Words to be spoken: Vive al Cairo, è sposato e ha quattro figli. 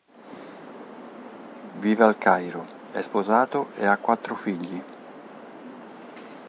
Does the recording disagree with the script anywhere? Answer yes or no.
no